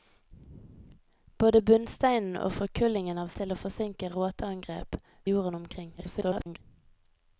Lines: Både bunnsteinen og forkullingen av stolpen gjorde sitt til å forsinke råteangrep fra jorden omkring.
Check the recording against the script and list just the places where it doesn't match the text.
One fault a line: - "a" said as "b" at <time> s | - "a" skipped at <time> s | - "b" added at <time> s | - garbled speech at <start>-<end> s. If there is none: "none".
- "stolpen gjorde sitt" skipped at 3.3 s
- "fra" skipped at 5.0 s
- garbled speech at 6.0-6.6 s